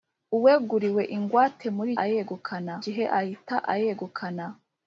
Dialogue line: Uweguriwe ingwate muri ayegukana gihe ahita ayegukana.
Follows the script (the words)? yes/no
yes